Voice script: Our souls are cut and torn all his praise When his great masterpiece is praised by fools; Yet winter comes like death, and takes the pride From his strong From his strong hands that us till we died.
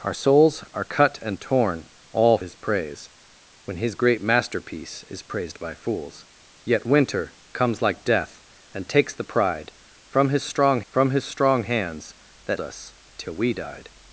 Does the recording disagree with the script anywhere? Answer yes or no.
no